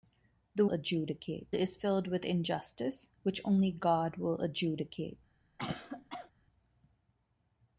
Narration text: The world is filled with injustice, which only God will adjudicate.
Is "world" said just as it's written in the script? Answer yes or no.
no